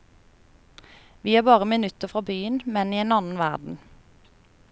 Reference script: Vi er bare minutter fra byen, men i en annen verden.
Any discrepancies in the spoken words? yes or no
no